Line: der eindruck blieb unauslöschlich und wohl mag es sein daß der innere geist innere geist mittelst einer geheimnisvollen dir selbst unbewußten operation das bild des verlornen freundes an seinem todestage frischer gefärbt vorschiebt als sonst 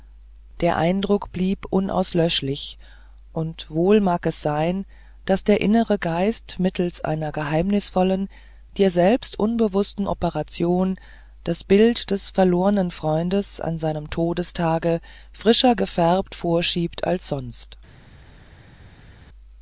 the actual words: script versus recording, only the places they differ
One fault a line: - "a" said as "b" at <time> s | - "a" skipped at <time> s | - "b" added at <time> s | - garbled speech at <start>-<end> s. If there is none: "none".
- "innere geist" skipped at 6.5 s